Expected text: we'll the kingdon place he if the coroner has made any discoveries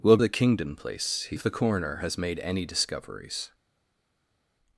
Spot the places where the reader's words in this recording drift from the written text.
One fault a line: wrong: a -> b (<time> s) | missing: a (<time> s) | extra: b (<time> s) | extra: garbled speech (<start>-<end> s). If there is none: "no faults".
no faults